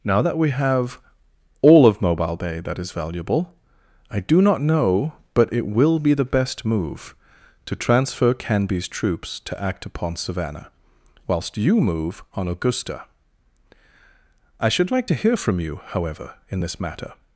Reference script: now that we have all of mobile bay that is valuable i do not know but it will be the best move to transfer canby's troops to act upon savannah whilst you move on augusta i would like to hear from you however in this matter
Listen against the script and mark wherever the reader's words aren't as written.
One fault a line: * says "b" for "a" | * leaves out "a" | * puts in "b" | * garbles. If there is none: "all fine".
* says "should" for "would"